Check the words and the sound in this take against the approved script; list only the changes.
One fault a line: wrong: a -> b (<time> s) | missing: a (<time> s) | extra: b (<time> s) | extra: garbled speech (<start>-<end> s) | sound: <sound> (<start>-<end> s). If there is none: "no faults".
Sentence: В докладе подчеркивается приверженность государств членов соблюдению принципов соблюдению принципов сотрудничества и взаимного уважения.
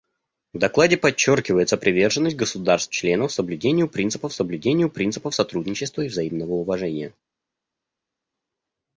no faults